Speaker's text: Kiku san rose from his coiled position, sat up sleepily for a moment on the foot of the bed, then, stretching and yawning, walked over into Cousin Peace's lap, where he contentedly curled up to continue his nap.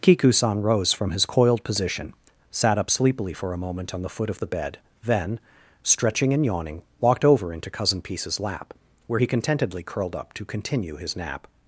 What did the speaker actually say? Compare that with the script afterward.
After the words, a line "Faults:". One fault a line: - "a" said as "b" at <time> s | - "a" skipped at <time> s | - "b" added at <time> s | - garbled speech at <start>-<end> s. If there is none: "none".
Kiku san rose from his coiled position, sat up sleepily for a moment on the foot of the bed, then, stretching and yawning, walked over into Cousin Peace's lap, where he contentedly curled up to continue his nap.
Faults:
none